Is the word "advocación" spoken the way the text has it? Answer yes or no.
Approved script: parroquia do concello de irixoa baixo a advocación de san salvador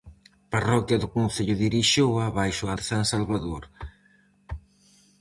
no